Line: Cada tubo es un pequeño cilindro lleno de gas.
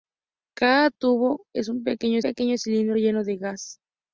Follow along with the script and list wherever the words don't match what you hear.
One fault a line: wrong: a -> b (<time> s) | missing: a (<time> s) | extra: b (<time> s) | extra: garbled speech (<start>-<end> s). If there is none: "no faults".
extra: pequeño (2.2 s)